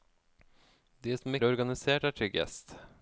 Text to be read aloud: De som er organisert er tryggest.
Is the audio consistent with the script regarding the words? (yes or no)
yes